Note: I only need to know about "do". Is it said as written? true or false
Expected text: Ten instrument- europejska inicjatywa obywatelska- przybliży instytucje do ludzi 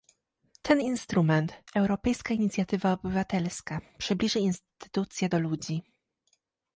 true